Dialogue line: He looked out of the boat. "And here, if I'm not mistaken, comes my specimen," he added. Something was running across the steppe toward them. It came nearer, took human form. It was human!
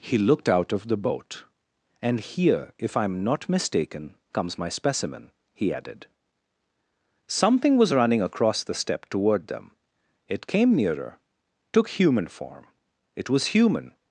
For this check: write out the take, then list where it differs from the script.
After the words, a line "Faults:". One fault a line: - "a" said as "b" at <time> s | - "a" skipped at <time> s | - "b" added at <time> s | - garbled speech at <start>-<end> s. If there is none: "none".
He looked out of the boat. "And here, if I'm not mistaken, comes my specimen," he added. Something was running across the steppe toward them. It came nearer, took human form. It was human!
Faults:
none